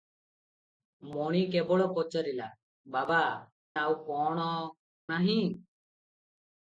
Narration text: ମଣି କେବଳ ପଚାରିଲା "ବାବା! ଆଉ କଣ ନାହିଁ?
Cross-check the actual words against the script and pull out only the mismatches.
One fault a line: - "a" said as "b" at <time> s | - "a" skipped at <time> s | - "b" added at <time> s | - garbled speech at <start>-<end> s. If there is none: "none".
none